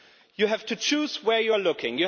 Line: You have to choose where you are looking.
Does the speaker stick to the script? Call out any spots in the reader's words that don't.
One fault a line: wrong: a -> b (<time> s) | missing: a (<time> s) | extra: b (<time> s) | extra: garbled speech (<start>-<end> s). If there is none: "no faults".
no faults